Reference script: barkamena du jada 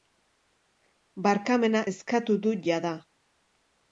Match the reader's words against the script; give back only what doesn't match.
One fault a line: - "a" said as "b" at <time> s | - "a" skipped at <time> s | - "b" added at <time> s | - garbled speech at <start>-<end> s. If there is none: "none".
- "eskatu" added at 1.9 s